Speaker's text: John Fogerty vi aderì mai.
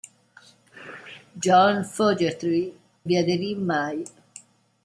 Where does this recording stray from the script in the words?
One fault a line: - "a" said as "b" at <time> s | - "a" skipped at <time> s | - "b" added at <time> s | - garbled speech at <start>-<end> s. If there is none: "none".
none